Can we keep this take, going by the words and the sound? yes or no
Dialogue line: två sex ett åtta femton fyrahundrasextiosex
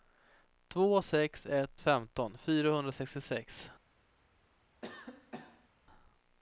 no